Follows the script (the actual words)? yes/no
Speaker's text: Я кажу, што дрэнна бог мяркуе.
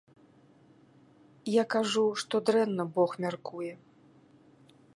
yes